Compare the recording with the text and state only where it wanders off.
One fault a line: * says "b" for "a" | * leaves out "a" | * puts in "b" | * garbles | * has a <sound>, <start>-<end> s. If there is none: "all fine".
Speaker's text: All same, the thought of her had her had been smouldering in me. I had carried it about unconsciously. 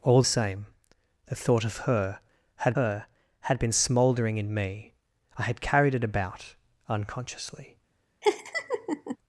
* has a laugh, 8.2-9.2 s